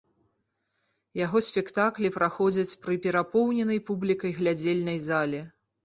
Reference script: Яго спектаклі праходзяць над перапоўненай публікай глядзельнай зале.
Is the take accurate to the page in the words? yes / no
no